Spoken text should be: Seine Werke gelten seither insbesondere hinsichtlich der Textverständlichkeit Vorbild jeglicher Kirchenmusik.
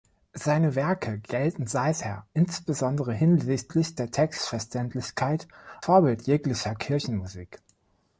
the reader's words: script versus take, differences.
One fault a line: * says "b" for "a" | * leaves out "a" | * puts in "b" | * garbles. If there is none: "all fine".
all fine